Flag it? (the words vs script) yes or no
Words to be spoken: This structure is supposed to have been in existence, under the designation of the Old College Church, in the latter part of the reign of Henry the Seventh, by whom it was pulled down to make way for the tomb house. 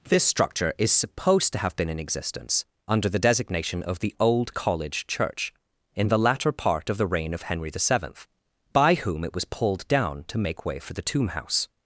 no